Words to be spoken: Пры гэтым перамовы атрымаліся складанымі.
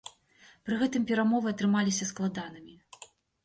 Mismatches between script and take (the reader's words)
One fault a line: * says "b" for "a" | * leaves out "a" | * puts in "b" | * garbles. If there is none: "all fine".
all fine